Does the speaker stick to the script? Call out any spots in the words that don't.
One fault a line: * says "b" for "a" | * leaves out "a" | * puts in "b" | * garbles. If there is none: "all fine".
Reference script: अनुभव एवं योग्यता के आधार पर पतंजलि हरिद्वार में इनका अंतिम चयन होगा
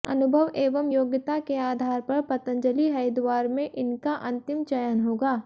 all fine